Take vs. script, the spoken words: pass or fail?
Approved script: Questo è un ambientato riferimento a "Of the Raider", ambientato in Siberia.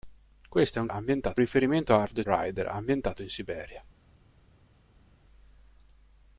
pass